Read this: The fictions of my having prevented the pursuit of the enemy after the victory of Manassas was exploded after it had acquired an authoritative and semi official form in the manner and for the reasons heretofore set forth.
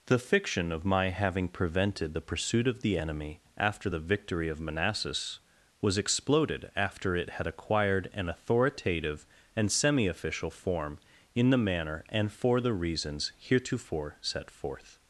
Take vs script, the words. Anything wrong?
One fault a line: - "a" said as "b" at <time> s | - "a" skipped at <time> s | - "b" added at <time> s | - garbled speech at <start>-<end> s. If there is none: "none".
- "fictions" said as "fiction" at 0.2 s